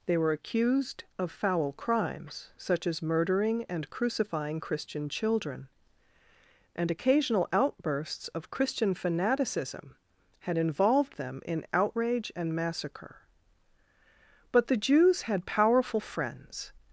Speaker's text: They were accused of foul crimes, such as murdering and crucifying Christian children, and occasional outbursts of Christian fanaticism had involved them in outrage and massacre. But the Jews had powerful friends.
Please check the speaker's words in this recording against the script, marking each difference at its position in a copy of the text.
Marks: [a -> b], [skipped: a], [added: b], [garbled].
They were accused of foul crimes, such as murdering and crucifying Christian children, and occasional outbursts of Christian fanaticism had involved them in outrage and massacre. But the Jews had powerful friends.